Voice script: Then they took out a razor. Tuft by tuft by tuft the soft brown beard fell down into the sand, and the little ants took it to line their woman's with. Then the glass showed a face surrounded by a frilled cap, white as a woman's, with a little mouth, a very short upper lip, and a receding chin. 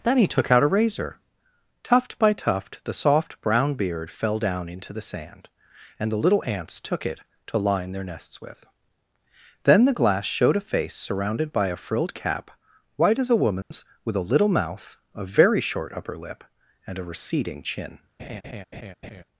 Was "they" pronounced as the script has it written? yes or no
no